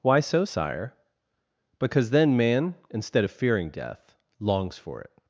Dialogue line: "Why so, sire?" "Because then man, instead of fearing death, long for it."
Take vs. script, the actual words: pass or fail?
fail